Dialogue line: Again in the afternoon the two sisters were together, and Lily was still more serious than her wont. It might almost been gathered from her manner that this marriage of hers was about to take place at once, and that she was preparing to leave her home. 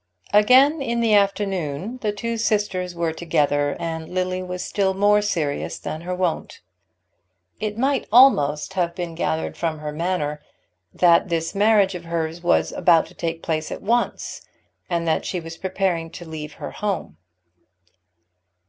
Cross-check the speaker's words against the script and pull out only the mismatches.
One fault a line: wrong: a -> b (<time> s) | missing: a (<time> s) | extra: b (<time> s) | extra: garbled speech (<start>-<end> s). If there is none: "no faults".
extra: have (8.7 s)